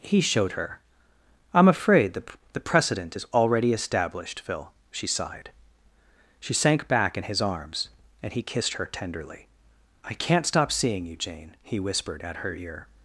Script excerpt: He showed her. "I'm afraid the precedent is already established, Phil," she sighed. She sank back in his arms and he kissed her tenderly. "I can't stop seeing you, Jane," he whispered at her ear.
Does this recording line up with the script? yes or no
no